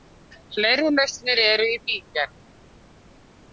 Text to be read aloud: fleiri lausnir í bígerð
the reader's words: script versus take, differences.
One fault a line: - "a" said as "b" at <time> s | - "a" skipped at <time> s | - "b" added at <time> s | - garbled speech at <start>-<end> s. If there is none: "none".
- "eru" added at 1.5 s